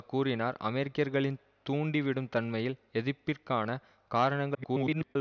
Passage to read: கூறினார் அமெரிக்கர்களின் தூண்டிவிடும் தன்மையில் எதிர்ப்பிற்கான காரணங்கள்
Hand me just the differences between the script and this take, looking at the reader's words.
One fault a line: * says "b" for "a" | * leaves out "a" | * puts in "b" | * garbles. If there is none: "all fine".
* garbles